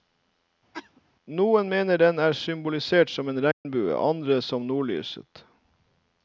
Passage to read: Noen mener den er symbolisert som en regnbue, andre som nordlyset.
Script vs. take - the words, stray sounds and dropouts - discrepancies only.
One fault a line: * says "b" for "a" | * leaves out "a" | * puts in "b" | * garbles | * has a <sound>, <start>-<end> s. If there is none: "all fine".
* has a cough, 0.7-1.0 s
* has a dropout, 3.5-3.7 s